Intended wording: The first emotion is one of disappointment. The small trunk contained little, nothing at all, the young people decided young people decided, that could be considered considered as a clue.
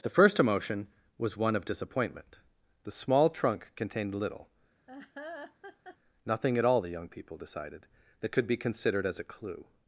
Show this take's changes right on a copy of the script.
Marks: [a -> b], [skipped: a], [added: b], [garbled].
The first emotion [is -> was] one of disappointment. The small trunk contained little, nothing at all, the young people decided [skipped: young people decided,] that could be considered [skipped: considered] as a clue.